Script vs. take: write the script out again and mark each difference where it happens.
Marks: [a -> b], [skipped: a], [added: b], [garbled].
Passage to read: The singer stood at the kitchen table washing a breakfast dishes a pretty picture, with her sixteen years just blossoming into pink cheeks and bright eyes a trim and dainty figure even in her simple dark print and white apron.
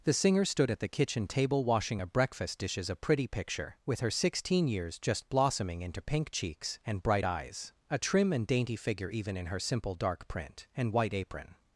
The singer stood at the kitchen table washing a breakfast dishes a pretty picture, with her sixteen years just blossoming into pink cheeks and bright eyes a trim and dainty figure even in her simple dark print and white apron.